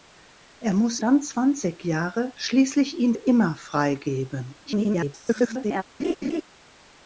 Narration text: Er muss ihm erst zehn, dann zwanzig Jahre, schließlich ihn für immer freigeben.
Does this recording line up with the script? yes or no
no